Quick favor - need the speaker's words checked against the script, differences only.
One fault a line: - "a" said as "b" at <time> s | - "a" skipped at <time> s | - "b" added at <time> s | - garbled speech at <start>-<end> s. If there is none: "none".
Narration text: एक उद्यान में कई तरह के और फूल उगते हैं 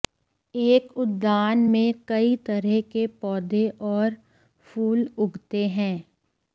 - "पौधे" added at 3.2 s